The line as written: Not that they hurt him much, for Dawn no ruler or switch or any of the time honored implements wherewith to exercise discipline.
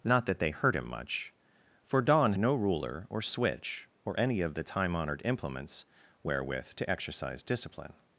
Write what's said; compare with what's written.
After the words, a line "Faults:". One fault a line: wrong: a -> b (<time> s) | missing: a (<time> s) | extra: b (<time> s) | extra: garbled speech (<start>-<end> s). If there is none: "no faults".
Not that they hurt him much, for Dawn no ruler or switch or any of the time honored implements wherewith to exercise discipline.
Faults:
no faults